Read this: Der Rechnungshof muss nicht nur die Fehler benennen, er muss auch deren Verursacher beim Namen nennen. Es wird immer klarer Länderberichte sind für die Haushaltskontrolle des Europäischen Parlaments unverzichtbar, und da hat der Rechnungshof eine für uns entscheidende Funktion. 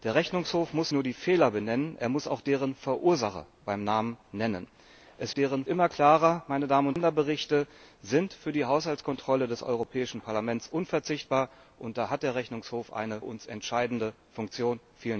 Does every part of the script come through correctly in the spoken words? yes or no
no